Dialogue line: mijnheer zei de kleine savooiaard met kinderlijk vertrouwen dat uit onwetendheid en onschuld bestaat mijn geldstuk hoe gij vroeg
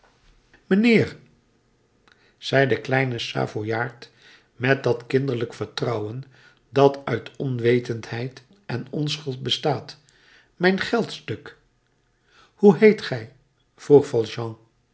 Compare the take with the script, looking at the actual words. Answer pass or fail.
fail